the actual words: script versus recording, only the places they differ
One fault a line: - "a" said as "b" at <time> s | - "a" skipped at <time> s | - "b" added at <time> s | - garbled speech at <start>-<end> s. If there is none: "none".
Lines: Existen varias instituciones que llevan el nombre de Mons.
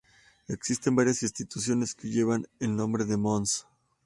none